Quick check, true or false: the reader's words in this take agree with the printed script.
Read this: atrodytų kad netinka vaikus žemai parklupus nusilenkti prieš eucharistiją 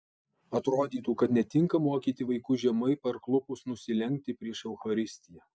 false